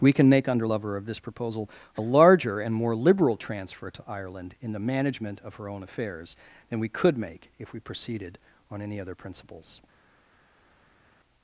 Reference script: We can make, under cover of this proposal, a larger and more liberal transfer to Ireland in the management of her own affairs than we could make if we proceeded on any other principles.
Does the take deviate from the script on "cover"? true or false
true